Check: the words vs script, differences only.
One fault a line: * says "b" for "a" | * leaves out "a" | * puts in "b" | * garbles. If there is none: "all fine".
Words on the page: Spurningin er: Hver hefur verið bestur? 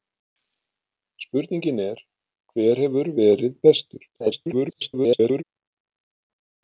* garbles